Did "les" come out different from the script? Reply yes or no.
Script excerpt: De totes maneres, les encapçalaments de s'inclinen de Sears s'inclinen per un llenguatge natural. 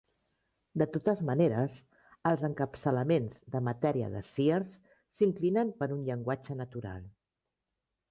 yes